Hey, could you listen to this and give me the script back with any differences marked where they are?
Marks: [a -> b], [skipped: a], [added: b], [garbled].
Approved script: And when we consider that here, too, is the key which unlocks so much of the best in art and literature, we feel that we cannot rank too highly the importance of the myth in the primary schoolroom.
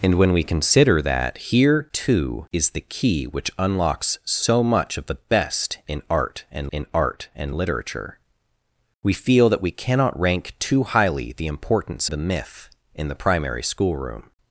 And when we consider that here, too, is the key which unlocks so much of the best in art and [added: in art and] literature, we feel that we cannot rank too highly the importance [skipped: of] the myth in the primary schoolroom.